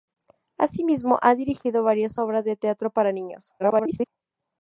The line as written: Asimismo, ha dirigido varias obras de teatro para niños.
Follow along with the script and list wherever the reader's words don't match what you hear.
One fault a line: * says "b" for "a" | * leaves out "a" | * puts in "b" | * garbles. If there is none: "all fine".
* garbles